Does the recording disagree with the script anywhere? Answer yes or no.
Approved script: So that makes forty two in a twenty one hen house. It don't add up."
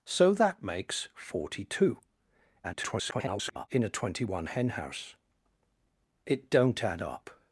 yes